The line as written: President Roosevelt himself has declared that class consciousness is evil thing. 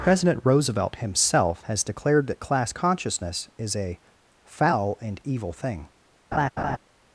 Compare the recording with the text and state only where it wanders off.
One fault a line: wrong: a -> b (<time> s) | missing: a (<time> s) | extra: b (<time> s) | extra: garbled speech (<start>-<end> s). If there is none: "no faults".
extra: a foul and (3.8 s)